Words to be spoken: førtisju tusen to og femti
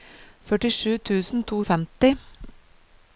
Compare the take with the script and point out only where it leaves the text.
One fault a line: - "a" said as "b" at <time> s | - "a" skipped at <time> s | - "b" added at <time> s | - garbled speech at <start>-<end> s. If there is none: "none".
none